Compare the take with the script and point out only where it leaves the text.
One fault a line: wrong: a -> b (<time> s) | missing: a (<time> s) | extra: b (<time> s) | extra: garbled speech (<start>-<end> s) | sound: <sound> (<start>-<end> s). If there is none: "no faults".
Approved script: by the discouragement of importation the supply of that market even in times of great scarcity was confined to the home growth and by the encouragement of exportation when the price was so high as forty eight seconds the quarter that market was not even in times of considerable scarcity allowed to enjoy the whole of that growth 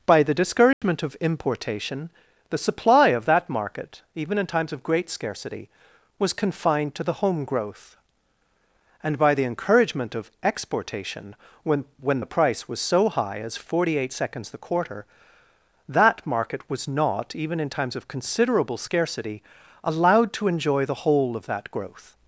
sound: dropout (0.7-0.8 s)
extra: when (12.0 s)